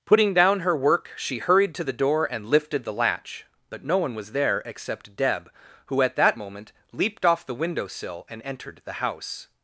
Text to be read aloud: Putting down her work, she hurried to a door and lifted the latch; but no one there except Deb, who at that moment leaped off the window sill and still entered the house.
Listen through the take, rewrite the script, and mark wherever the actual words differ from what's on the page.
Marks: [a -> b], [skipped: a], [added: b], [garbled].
Putting down her work, she hurried to [a -> the] door and lifted the latch; but no one [added: was] there except Deb, who at that moment leaped off the window sill and [skipped: still] entered the house.